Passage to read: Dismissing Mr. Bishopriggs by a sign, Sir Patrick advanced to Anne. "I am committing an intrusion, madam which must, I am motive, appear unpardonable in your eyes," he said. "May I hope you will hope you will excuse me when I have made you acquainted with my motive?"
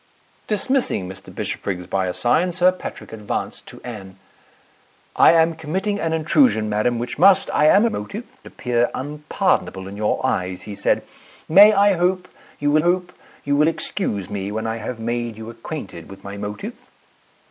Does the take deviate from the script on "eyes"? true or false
false